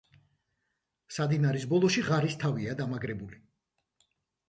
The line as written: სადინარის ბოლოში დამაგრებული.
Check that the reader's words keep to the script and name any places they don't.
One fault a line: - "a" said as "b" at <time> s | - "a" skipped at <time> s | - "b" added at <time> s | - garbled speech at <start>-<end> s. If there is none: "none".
- "ღარის თავია" added at 2.1 s